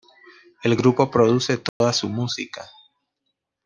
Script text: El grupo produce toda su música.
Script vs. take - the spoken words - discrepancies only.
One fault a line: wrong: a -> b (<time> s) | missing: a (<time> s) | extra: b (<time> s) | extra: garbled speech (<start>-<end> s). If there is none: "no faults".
no faults